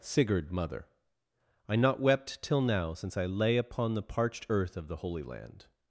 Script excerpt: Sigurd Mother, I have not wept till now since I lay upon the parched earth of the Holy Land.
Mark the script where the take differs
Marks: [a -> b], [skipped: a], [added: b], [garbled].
Sigurd Mother, I [skipped: have] not wept till now since I lay upon the parched earth of the Holy Land.